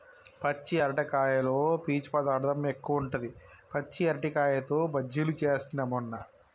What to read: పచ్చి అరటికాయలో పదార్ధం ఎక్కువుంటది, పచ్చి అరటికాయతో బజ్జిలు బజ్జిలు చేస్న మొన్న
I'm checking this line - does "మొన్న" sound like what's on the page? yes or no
yes